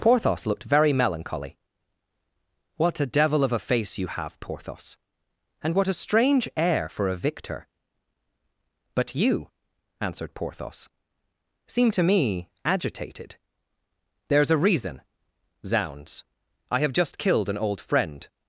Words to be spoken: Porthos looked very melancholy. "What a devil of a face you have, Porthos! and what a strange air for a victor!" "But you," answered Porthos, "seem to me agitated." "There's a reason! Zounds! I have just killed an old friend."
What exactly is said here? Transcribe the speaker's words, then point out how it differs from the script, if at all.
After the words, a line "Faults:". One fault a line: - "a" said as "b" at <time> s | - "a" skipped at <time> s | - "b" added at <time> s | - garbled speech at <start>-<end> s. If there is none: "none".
Porthos looked very melancholy. "What a devil of a face you have, Porthos! and what a strange air for a victor!" "But you," answered Porthos, "seem to me agitated." "There's a reason! Zounds! I have just killed an old friend."
Faults:
none